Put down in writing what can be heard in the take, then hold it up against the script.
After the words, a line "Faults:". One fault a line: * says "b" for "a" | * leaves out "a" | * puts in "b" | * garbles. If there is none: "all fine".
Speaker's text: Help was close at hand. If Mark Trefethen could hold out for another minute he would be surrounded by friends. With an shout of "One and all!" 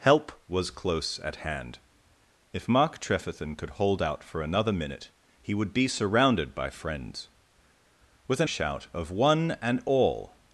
Help was close at hand. If Mark Trefethen could hold out for another minute he would be surrounded by friends. With an shout of "One and all!"
Faults:
all fine